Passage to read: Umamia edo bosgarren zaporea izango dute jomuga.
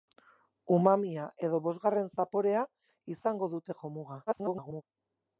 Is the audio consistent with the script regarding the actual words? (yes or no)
no